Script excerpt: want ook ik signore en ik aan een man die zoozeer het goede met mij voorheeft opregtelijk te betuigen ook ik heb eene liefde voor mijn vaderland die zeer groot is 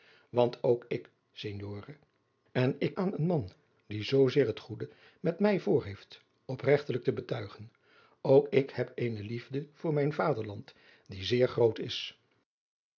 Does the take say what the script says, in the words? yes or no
yes